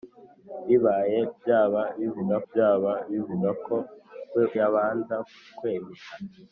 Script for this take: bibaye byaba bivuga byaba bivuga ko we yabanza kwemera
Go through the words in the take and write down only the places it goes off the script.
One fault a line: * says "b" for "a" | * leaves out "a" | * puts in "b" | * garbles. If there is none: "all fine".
all fine